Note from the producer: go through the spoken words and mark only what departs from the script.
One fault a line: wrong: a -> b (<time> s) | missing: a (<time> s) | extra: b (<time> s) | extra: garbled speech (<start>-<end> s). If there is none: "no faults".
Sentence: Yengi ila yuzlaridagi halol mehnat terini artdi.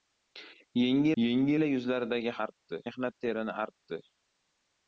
extra: yengi (1.2 s)
wrong: halol -> artdi (2.5 s)